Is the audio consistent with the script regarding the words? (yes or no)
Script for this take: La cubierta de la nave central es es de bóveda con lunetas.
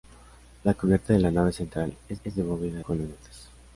yes